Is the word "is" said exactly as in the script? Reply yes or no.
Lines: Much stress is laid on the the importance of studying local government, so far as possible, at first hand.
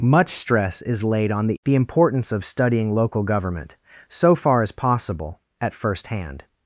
yes